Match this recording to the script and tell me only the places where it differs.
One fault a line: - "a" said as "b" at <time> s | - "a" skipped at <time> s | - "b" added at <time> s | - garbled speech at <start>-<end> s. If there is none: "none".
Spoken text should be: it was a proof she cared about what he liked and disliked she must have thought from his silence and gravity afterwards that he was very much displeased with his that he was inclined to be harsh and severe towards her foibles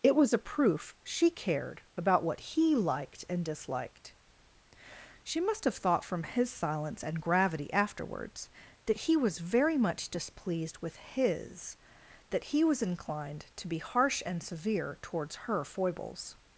none